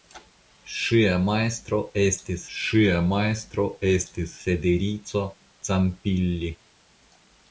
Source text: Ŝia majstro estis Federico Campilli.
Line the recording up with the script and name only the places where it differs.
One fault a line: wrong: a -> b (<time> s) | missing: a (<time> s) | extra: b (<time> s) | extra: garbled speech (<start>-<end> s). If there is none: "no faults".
extra: ŝia majstro estis (2.6 s)